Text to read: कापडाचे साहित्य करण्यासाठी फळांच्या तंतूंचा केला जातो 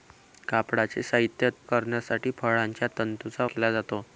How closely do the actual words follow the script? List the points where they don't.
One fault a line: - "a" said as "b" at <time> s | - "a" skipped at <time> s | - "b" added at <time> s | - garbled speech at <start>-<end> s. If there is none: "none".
none